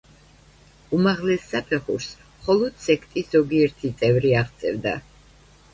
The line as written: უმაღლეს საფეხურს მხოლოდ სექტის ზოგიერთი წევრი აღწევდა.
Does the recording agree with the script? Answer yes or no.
yes